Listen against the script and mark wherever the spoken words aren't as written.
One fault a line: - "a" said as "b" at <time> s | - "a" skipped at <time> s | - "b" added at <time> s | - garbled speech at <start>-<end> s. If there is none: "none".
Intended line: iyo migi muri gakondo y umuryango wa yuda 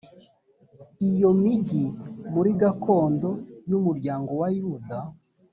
none